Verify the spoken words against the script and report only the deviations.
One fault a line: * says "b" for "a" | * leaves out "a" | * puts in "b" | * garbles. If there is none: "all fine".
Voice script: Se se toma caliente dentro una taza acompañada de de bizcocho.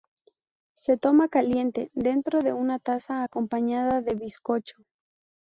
* leaves out "se"
* puts in "de"
* leaves out "de"